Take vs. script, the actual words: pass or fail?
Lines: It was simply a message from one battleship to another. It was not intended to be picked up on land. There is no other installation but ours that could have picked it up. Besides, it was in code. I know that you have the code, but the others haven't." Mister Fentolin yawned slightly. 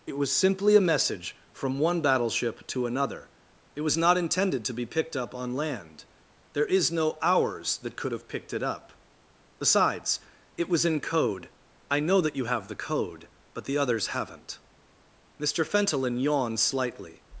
fail